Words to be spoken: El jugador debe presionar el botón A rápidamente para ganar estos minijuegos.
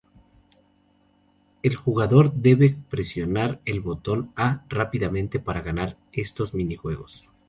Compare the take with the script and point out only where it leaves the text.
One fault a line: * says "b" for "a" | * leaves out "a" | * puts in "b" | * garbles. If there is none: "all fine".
all fine